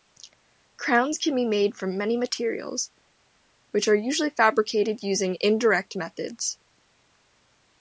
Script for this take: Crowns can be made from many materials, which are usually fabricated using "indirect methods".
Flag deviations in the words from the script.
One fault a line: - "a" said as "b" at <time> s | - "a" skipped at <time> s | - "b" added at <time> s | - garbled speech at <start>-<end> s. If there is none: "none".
none